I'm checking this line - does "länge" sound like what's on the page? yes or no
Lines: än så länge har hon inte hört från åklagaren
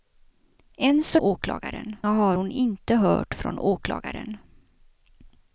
no